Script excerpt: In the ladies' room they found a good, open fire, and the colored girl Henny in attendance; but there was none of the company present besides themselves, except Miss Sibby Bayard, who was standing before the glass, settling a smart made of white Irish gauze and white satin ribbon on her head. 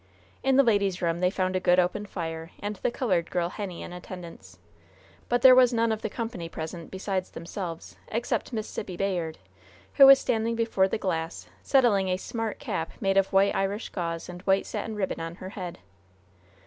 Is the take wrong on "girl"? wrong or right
right